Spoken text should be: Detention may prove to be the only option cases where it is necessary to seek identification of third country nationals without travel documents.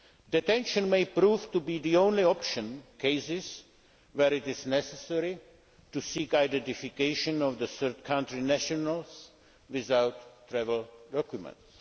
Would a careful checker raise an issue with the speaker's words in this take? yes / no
no